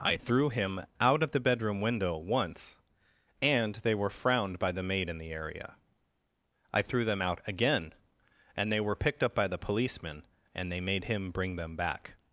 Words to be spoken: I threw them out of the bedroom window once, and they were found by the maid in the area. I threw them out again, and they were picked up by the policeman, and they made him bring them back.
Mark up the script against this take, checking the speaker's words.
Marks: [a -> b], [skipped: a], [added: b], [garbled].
I threw [them -> him] out of the bedroom window once, and they were [found -> frowned] by the maid in the area. I threw them out again, and they were picked up by the policeman, and they made him bring them back.